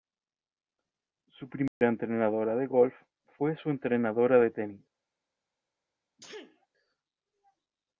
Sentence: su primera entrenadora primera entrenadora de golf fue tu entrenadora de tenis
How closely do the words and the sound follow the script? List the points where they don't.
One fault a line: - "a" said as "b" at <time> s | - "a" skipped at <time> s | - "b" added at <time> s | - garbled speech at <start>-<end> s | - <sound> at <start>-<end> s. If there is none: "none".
- dropout at 1.7-1.8 s
- "primera entrenadora" skipped at 2.5 s
- "tu" said as "su" at 3.6 s
- sneeze at 6.2-6.7 s